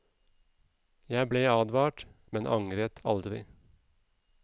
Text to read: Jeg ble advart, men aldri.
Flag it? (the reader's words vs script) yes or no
yes